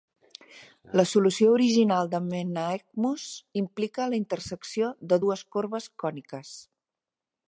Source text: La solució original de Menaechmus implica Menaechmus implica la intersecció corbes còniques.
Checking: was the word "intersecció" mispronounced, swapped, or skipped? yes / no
yes